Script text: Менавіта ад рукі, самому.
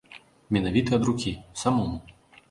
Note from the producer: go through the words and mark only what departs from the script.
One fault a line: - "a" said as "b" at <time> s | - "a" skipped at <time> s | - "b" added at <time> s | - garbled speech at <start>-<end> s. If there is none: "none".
none